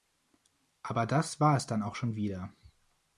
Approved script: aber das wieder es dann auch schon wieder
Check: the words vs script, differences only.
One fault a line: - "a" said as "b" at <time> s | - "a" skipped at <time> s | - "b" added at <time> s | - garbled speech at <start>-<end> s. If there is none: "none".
- "wieder" said as "war" at 1.4 s